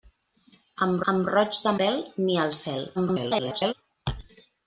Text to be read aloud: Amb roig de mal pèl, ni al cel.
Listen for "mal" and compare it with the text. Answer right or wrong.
wrong